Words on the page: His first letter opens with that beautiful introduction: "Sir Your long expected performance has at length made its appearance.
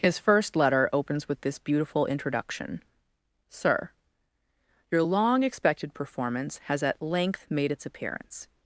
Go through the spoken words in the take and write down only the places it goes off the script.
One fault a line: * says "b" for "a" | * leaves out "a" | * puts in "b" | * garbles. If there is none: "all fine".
* says "this" for "that"